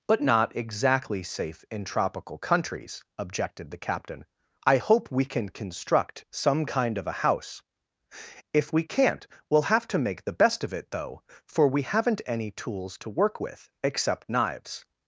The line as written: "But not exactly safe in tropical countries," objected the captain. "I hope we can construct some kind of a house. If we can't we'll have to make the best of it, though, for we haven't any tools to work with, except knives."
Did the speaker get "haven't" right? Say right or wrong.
right